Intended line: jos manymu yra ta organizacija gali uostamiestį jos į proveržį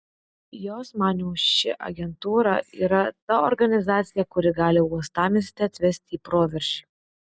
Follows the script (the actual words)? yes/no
no